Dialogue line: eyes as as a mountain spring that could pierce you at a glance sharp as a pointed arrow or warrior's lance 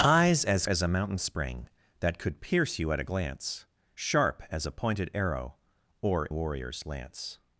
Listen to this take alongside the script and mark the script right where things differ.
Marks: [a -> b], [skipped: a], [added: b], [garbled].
eyes as as a mountain spring that could pierce you at a glance sharp as a pointed arrow or warrior's lance